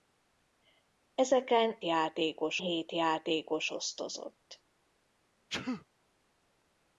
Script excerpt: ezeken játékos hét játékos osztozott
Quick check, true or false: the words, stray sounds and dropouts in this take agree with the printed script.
false